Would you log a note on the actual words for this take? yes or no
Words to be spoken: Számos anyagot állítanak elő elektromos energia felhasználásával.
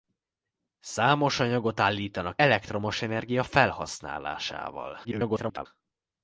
yes